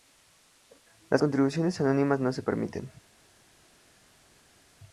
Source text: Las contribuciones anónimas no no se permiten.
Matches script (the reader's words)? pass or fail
fail